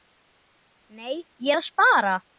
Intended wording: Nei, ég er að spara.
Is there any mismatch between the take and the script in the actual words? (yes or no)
no